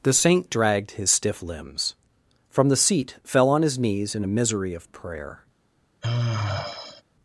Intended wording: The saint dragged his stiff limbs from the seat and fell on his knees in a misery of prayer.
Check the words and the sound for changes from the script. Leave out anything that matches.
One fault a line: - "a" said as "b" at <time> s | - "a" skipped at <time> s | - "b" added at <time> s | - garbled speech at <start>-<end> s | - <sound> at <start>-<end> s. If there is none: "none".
- "and" skipped at 3.2 s
- sigh at 6.0-7.0 s